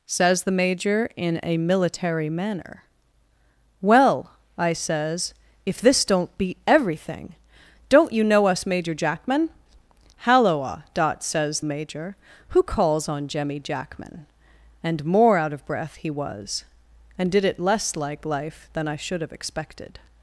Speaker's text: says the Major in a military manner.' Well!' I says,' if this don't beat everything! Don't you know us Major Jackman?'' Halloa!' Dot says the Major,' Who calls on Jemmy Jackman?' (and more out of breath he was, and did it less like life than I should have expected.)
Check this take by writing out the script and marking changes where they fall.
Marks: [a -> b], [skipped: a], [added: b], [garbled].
says the Major in a military manner.' Well!' I says,' if this don't beat everything! Don't you know us Major Jackman?'' Halloa!' Dot says [skipped: the] Major,' Who calls on Jemmy Jackman?' (and more out of breath he was, and did it less like life than I should have expected.)